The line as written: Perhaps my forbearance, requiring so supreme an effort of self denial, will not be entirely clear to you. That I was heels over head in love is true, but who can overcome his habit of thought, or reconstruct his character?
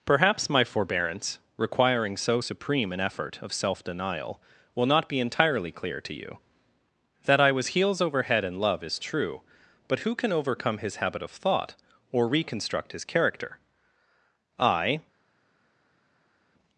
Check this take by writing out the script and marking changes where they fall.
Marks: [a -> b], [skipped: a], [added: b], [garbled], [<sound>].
Perhaps my forbearance, requiring so supreme an effort of self denial, will not be entirely clear to you. That I was heels over head in love is true, but who can overcome his habit of thought, or reconstruct his character? [added: I]